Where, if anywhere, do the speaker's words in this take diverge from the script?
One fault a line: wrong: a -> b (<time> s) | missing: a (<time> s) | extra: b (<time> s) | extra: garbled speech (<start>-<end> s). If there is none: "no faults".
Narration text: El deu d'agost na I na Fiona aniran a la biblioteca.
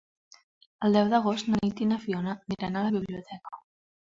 extra: Nit (1.6 s)